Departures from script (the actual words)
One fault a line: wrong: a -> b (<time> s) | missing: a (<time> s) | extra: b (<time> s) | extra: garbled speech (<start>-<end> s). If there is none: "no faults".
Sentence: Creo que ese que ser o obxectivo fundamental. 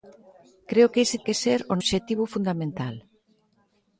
no faults